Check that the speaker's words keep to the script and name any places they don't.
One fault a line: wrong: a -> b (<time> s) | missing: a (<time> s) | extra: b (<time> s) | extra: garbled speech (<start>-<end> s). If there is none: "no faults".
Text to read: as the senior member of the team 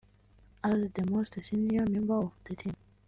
extra: most (1.1 s)